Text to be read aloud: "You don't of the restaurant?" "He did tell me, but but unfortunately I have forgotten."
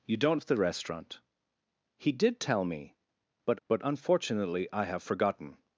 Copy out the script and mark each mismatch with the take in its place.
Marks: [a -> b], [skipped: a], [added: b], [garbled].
"You don't of the restaurant?" "He did tell me, but but unfortunately I have forgotten."